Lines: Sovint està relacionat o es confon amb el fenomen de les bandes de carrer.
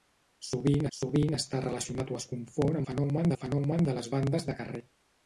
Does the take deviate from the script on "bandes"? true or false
false